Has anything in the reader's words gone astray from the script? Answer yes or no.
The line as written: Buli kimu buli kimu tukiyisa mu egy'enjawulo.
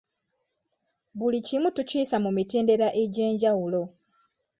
yes